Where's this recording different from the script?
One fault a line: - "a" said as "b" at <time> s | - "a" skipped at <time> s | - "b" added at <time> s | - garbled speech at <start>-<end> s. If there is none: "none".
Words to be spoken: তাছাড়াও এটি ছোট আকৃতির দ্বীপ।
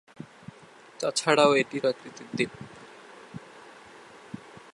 - "ছোট" skipped at 1.8 s